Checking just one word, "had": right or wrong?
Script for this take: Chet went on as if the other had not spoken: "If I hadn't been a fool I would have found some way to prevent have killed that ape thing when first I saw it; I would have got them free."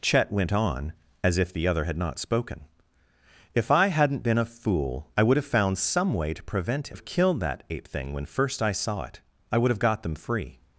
right